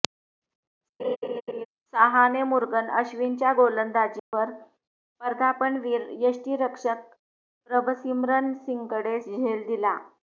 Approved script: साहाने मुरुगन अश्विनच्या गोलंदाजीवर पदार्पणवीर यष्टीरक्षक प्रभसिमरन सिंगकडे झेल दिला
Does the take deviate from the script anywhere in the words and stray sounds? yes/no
yes